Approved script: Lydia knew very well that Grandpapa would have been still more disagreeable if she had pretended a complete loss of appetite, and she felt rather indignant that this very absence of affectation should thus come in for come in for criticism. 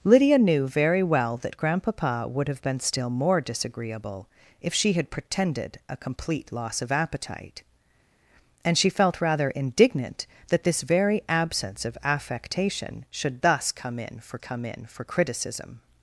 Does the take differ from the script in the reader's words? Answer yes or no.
no